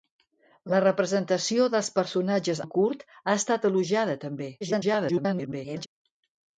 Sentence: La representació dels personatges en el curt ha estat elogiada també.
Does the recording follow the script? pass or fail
fail